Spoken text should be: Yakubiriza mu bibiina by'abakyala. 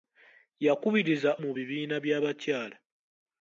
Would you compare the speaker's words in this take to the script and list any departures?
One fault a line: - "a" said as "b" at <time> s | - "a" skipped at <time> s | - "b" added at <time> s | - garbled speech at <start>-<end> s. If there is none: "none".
none